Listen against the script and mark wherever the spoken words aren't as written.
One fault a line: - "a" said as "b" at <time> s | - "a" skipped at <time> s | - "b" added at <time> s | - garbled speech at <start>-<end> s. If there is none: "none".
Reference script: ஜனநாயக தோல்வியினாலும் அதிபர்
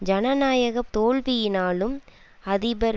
none